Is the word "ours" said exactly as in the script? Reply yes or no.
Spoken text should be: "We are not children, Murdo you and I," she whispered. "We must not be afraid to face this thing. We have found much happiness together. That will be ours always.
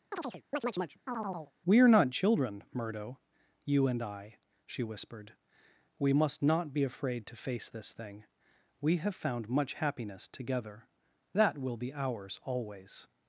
yes